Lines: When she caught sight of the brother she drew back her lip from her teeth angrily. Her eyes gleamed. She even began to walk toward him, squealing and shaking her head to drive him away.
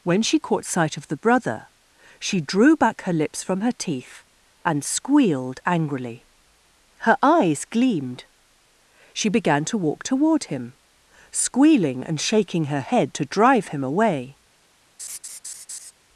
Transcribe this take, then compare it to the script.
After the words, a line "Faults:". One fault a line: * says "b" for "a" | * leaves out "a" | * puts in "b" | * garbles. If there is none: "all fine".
When she caught sight of the brother she drew back her lips from her teeth and squealed angrily. Her eyes gleamed. She began to walk toward him, squealing and shaking her head to drive him away.
Faults:
* says "lips" for "lip"
* puts in "and squealed"
* leaves out "even"